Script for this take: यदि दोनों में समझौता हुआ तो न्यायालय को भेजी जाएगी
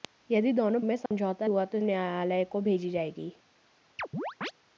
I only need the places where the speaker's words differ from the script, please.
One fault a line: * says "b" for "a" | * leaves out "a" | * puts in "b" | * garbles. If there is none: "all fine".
all fine